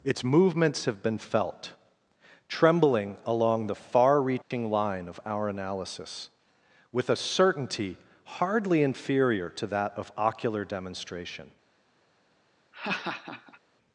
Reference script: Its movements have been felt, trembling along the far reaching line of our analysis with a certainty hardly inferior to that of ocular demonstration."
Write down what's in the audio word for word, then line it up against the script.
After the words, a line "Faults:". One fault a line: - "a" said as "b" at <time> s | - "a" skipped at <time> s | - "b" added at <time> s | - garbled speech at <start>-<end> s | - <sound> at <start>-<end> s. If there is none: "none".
Its movements have been felt, trembling along the far reaching line of our analysis with a certainty hardly inferior to that of ocular demonstration."
Faults:
- dropout at 4.4-4.5 s
- laugh at 12.7-13.6 s